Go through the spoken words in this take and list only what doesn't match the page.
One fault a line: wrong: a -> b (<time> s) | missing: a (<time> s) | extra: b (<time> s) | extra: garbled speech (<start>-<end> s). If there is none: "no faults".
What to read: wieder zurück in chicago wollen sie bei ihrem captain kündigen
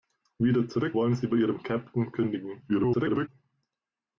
missing: in chicago (1.0 s)
extra: garbled speech (2.7-3.3 s)